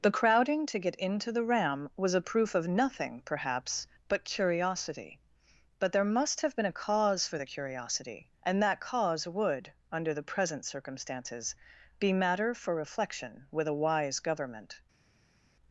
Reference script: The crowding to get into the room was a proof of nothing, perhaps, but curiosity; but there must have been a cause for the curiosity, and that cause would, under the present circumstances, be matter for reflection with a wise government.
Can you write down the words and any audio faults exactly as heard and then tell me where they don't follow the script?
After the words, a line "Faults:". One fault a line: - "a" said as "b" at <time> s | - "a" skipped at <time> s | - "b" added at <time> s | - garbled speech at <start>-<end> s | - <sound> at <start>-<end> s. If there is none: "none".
The crowding to get into the ram was a proof of nothing, perhaps, but curiosity; but there must have been a cause for the curiosity, and that cause would, under the present circumstances, be matter for reflection with a wise government.
Faults:
- "room" said as "ram" at 1.4 s